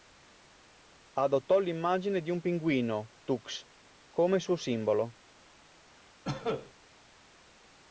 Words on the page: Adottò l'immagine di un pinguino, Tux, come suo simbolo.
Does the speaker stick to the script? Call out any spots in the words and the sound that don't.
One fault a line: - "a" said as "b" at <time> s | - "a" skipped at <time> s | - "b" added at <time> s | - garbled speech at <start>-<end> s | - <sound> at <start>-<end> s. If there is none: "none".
- cough at 6.2-6.7 s